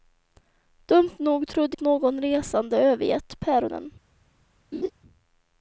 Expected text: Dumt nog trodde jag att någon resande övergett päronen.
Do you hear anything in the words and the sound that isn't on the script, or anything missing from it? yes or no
yes